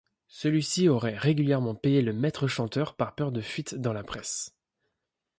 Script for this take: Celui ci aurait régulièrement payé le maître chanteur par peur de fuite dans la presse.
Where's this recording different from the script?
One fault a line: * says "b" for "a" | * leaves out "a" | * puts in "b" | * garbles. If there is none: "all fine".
all fine